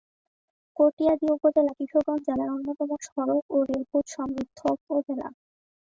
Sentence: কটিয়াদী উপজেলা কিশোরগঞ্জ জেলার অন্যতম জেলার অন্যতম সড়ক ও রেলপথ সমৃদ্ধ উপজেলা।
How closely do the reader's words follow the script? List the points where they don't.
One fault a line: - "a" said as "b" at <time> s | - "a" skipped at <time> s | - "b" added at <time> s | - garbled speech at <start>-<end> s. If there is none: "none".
- "জেলার অন্যতম" skipped at 2.9 s